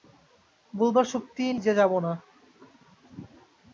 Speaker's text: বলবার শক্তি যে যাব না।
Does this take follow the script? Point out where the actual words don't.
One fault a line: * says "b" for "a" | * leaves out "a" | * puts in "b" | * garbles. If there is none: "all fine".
all fine